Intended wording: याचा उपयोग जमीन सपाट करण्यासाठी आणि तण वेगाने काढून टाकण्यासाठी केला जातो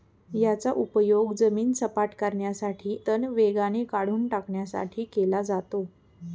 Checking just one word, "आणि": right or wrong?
wrong